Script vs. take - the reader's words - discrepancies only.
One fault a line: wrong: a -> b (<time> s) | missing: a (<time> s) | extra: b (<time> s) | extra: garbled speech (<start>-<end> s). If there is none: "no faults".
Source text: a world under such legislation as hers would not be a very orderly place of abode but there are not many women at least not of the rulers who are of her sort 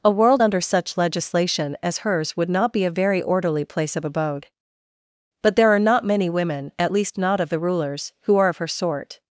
no faults